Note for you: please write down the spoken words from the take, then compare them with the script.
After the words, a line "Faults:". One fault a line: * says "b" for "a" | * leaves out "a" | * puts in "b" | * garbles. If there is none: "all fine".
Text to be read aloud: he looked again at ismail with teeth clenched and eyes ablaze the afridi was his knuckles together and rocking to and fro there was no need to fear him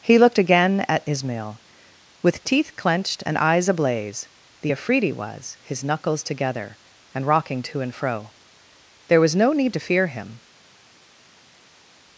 he looked again at ismail with teeth clenched and eyes ablaze the afridi was his knuckles together and rocking to and fro there was no need to fear him
Faults:
all fine